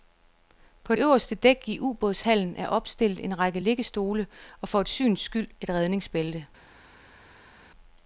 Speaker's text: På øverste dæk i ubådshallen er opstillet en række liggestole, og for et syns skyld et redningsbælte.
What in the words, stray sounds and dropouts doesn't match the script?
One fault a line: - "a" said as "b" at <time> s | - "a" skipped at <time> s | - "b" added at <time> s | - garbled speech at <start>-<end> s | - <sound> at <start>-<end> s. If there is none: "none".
none